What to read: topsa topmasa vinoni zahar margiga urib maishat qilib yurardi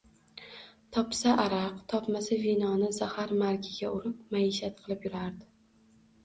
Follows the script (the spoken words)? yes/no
no